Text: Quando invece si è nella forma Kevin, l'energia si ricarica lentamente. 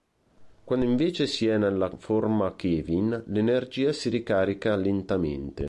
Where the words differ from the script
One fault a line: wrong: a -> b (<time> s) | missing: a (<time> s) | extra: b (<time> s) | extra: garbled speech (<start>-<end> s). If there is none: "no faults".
no faults